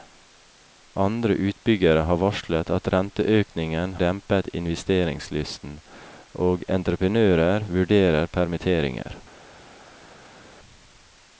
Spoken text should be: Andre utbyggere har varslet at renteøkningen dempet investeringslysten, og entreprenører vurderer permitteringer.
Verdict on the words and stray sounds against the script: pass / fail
pass